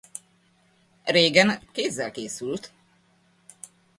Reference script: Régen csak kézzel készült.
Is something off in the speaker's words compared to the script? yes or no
yes